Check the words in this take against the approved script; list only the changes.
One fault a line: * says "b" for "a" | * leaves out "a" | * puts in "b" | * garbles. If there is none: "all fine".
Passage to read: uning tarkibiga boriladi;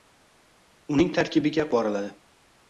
all fine